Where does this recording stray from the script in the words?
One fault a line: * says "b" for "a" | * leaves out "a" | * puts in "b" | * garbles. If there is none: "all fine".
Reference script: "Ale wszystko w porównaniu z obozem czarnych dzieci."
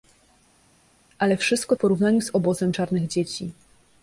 all fine